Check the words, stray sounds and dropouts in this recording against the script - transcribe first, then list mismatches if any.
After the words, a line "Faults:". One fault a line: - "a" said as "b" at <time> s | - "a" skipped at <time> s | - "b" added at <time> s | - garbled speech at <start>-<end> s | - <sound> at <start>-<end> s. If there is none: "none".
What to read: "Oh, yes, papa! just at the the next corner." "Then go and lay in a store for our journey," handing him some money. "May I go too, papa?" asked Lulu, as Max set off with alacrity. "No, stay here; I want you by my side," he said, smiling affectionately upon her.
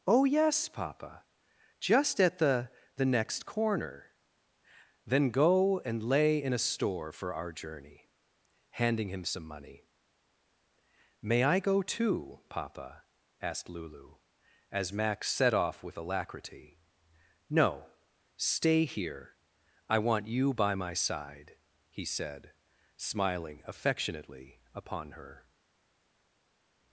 "Oh, yes, papa! just at the the next corner." "Then go and lay in a store for our journey," handing him some money. "May I go too, papa?" asked Lulu, as Max set off with alacrity. "No, stay here; I want you by my side," he said, smiling affectionately upon her.
Faults:
none